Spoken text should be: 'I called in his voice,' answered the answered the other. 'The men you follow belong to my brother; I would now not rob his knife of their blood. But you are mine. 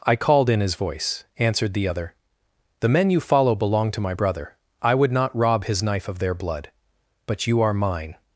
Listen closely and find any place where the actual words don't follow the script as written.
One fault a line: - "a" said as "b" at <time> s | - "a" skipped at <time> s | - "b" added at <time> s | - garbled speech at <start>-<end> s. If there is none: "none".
- "answered the" skipped at 1.9 s
- "now" skipped at 5.1 s